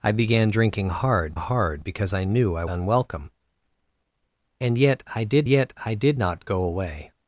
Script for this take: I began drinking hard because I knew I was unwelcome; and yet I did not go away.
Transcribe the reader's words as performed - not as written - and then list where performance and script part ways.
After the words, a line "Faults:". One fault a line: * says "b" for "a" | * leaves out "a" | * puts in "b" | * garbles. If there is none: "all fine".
I began drinking hard hard because I knew I unwelcome; and yet I did yet I did not go away.
Faults:
* puts in "hard"
* leaves out "was"
* puts in "yet I did"